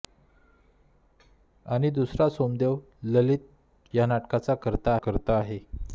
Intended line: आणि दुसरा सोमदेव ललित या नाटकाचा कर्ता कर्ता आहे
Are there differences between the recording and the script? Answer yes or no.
no